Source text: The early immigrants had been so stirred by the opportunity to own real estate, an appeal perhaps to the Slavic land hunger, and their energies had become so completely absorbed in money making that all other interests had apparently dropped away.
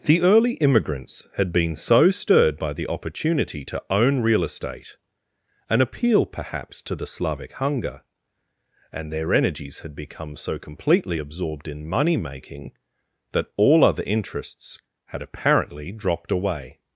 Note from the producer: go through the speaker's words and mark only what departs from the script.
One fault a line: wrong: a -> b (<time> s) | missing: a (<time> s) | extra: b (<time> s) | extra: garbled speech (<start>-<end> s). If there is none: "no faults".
missing: land (7.5 s)